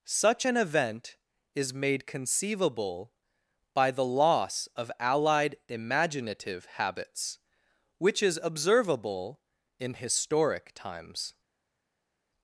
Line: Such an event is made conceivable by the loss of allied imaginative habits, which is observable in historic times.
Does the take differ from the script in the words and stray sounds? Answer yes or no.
no